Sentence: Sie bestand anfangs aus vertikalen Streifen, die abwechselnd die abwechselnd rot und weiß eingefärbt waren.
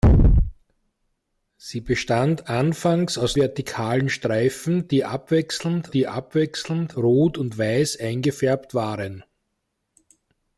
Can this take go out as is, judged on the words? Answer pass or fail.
pass